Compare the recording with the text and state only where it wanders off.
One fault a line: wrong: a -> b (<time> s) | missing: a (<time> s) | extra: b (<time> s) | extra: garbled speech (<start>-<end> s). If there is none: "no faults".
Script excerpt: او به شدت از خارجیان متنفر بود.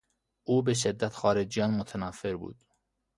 missing: از (1.1 s)